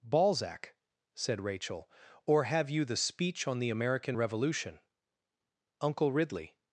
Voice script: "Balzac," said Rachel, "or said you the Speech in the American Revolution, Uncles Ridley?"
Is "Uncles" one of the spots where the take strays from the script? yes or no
yes